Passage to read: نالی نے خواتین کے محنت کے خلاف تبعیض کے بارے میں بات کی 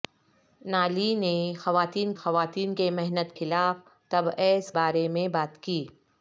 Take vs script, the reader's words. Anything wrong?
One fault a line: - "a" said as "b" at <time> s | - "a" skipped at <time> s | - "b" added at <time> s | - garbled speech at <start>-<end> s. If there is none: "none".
- "خواتین" added at 2.2 s
- "کے" skipped at 3.4 s
- "کے" skipped at 4.7 s